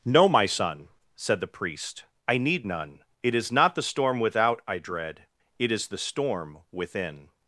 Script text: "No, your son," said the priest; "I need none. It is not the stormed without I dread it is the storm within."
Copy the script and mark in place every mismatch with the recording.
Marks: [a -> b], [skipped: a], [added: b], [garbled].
"No, [your -> my] son," said the priest; "I need none. It is not the [stormed -> storm] without I dread it is the storm within."